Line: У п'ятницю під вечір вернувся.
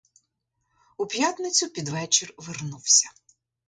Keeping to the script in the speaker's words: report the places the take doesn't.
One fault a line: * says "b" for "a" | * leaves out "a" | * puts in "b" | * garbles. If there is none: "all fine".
all fine